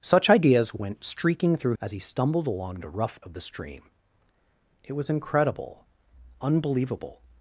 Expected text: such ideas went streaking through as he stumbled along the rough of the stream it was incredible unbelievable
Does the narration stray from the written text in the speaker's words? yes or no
no